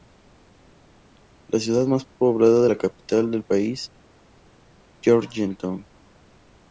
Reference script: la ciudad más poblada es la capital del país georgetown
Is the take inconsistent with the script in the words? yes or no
no